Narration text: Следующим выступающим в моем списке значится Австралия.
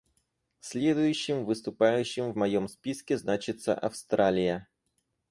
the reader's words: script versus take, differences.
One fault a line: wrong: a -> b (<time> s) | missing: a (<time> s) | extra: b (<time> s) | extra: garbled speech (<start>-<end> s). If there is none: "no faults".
no faults